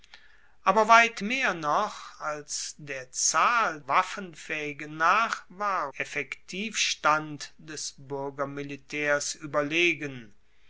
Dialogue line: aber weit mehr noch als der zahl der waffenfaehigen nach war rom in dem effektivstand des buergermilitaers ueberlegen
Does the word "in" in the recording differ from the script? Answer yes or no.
yes